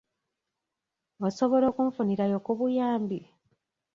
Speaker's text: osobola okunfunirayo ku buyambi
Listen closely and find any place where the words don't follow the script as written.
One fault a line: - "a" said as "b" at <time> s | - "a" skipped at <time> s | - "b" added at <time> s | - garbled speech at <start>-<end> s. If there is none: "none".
none